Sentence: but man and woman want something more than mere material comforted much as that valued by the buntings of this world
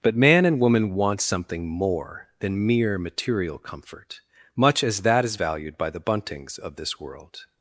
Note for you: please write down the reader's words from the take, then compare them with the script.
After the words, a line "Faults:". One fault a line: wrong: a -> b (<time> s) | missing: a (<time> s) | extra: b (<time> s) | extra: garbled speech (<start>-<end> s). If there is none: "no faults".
but man and woman want something more than mere material comfort much as that is valued by the buntings of this world
Faults:
wrong: comforted -> comfort (3.6 s)
extra: is (5.2 s)